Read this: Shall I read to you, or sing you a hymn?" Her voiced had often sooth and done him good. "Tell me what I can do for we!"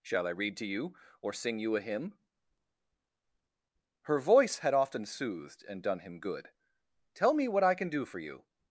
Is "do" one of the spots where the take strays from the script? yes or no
no